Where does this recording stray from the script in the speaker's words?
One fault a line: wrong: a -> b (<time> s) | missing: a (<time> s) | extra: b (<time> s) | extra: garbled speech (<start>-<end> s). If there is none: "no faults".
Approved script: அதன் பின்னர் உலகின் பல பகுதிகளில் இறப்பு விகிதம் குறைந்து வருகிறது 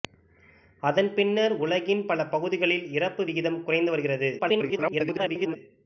extra: garbled speech (4.4-5.6 s)